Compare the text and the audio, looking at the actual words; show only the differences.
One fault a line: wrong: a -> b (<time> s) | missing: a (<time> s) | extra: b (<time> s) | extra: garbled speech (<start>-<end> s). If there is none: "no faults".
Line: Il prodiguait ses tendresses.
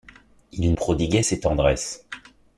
no faults